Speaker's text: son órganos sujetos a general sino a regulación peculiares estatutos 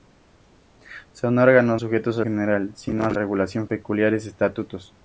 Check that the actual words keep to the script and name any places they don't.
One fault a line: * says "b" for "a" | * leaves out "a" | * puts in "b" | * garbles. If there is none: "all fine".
all fine